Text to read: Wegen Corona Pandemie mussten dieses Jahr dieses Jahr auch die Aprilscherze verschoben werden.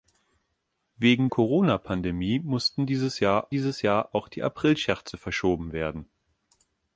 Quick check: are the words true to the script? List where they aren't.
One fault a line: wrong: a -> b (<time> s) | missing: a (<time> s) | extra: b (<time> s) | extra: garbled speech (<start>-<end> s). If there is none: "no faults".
no faults